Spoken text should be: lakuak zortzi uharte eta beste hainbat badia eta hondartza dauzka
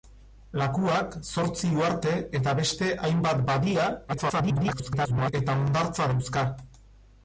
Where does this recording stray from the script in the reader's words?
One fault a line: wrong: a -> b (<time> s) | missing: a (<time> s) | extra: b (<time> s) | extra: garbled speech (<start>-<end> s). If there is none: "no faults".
extra: garbled speech (4.1-5.3 s)